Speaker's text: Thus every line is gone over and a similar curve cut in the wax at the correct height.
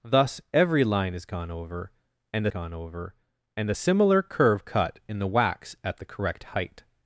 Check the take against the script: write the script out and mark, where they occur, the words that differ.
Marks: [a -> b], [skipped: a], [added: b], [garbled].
Thus every line is gone over and [added: gone over and] a similar curve cut in the wax at the correct height.